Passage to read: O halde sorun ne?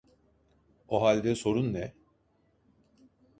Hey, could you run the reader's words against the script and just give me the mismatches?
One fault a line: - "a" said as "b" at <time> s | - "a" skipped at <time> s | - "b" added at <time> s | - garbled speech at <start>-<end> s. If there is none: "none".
none